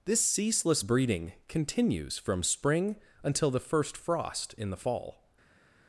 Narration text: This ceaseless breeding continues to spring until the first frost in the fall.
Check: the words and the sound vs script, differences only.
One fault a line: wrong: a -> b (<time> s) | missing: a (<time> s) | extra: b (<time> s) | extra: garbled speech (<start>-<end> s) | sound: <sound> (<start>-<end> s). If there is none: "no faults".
wrong: to -> from (2.2 s)